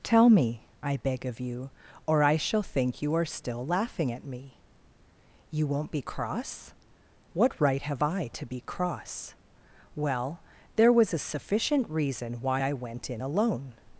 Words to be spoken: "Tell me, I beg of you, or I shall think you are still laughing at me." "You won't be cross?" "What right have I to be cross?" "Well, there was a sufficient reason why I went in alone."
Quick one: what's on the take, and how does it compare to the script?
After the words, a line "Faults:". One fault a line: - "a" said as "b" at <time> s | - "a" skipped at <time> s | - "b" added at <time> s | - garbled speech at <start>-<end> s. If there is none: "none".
"Tell me, I beg of you, or I shall think you are still laughing at me." "You won't be cross?" "What right have I to be cross?" "Well, there was a sufficient reason why I went in alone."
Faults:
none